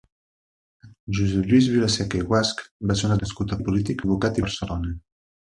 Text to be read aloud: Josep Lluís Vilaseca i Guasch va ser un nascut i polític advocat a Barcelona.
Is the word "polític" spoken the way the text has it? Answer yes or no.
yes